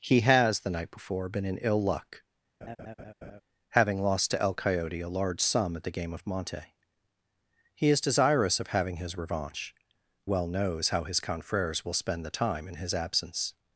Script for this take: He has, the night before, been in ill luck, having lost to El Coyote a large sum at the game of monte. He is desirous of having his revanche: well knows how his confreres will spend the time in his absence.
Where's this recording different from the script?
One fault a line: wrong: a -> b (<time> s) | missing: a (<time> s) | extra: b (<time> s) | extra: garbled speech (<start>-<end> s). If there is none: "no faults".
no faults